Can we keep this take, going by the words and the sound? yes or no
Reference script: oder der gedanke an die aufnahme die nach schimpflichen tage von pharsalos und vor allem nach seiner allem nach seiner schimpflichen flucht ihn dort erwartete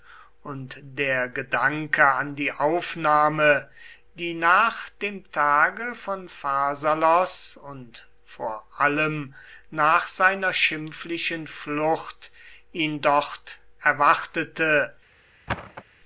no